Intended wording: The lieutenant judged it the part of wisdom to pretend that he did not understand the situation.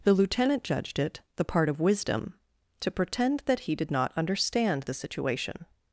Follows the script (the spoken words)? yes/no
yes